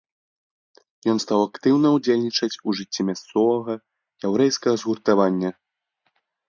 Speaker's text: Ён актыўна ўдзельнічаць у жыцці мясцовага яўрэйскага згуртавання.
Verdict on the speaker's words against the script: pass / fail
fail